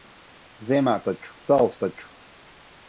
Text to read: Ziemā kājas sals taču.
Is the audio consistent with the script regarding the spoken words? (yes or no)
no